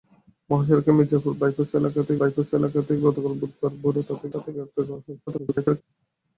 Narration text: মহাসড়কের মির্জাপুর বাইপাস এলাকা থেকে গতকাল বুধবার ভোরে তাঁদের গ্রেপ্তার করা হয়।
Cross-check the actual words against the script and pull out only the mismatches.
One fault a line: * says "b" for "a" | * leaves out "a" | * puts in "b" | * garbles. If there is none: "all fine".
* puts in "বাইপাস এলাকা থেকে"
* puts in "তাঁদের"
* garbles